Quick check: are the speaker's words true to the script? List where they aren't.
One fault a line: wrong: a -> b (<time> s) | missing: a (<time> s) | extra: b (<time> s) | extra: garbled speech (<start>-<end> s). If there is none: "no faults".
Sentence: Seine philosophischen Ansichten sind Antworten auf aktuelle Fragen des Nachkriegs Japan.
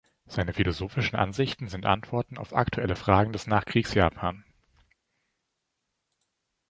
no faults